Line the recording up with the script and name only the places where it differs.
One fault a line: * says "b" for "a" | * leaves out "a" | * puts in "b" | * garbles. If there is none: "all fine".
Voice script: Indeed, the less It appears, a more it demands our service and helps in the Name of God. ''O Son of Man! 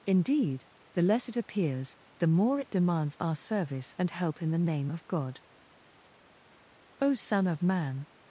* says "the" for "a"
* says "help" for "helps"